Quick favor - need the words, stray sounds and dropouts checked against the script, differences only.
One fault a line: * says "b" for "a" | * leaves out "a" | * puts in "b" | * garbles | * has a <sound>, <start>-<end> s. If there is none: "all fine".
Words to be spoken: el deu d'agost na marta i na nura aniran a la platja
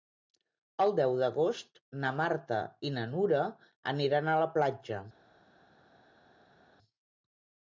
all fine